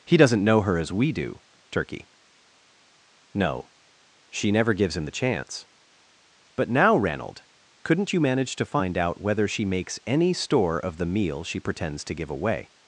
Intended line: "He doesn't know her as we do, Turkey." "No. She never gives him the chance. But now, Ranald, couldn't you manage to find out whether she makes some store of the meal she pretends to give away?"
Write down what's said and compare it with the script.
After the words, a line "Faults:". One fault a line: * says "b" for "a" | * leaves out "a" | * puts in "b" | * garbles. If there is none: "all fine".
"He doesn't know her as we do, Turkey." "No. She never gives him the chance. But now, Ranald, couldn't you manage to find out whether she makes any store of the meal she pretends to give away?"
Faults:
* says "any" for "some"